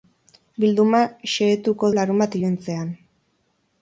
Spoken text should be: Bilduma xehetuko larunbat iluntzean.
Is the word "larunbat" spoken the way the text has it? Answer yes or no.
yes